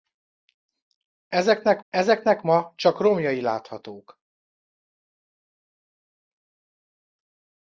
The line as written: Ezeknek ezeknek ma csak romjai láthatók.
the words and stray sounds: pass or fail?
pass